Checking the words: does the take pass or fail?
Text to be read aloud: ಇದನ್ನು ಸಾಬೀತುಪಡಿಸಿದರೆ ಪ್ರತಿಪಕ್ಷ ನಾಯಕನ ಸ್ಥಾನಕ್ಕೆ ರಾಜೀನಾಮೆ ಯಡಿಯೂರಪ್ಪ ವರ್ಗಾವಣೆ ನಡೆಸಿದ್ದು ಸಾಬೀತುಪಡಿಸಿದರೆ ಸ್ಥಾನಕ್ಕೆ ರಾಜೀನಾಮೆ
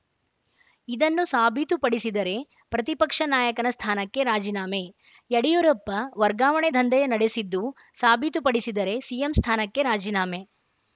fail